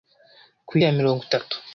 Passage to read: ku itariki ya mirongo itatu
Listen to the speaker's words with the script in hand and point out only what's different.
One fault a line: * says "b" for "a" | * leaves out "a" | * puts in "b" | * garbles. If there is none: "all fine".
* leaves out "itariki"